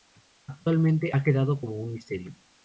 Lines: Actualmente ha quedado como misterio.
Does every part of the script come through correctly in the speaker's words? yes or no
no